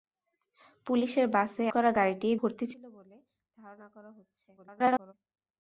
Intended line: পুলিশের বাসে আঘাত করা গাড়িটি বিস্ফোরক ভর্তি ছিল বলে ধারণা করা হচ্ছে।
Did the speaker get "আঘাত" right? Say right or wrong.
wrong